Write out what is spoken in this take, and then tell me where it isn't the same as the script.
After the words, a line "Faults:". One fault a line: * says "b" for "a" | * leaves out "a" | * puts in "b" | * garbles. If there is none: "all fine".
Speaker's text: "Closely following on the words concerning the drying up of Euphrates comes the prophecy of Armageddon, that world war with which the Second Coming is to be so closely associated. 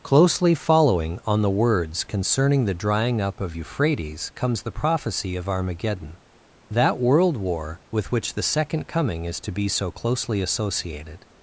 "Closely following on the words concerning the drying up of Euphrates comes the prophecy of Armageddon, that world war with which the Second Coming is to be so closely associated.
Faults:
all fine